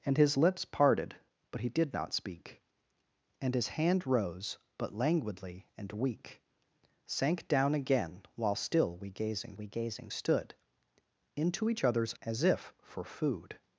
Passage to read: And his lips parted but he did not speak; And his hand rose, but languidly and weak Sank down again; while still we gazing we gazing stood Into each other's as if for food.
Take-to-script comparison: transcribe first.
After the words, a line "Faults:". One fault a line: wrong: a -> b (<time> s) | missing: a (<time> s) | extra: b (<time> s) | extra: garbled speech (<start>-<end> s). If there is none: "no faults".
And his lips parted but he did not speak; And his hand rose, but languidly and weak Sank down again; while still we gazing we gazing stood Into each other's as if for food.
Faults:
no faults